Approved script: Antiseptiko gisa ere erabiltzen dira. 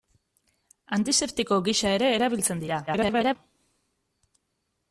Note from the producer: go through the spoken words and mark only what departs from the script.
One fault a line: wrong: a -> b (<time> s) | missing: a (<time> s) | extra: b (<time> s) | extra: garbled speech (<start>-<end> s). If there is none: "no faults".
extra: garbled speech (2.9-3.4 s)